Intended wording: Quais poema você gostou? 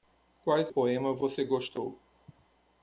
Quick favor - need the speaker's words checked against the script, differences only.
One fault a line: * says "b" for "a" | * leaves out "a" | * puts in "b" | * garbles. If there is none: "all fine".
all fine